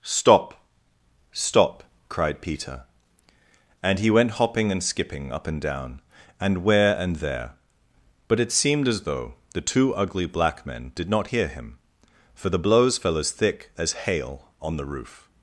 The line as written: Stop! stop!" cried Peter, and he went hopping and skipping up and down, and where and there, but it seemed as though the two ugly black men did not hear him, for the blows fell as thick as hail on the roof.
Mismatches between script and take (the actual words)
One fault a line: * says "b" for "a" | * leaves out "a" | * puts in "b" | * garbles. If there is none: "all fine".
all fine